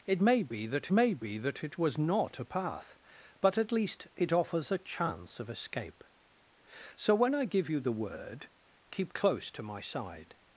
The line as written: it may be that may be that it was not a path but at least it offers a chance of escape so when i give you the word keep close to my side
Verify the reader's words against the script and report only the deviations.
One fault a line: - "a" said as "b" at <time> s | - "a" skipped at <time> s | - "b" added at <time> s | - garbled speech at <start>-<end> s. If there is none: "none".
none